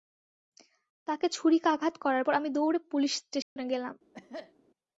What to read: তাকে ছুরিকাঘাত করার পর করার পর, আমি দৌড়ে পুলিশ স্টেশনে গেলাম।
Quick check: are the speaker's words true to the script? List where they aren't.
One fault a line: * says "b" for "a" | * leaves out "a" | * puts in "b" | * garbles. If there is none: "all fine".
* leaves out "করার পর"